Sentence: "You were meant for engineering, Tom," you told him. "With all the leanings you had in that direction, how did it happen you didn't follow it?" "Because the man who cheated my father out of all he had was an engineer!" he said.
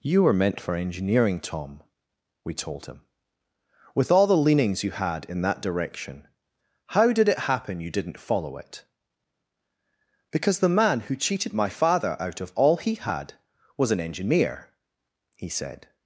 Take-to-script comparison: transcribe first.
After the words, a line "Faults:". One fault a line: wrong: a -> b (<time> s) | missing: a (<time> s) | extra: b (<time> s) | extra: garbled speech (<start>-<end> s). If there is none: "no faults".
"You were meant for engineering, Tom," we told him. "With all the leanings you had in that direction, how did it happen you didn't follow it?" "Because the man who cheated my father out of all he had was an engineer!" he said.
Faults:
wrong: you -> we (2.4 s)